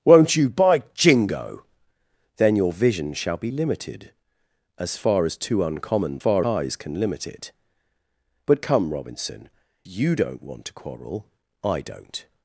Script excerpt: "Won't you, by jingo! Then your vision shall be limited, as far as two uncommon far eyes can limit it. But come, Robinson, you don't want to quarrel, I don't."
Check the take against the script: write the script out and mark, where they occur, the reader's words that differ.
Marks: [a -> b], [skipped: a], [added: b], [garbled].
"Won't you, by jingo! Then your vision shall be limited, as far as two uncommon far eyes can limit it. But come, Robinson, you don't want to quarrel, I don't."